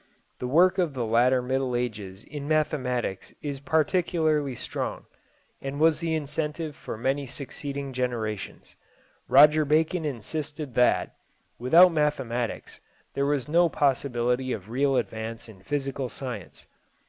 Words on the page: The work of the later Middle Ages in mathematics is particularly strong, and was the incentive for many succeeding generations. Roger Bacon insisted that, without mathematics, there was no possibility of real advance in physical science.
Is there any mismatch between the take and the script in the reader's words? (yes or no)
no